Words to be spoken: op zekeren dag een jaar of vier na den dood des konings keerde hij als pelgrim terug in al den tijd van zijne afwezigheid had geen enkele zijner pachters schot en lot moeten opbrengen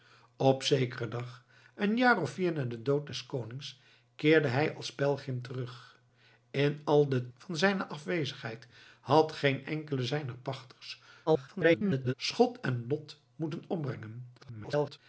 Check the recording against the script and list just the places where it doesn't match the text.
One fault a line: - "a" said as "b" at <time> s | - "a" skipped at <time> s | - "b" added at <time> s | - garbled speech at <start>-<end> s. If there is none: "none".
- "tijd" skipped at 7.3 s
- garbled speech at 11.3-12.1 s
- garbled speech at 14.4-15.0 s